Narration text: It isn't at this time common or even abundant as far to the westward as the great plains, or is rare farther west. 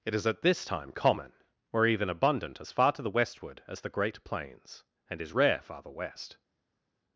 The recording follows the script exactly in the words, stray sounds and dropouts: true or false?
false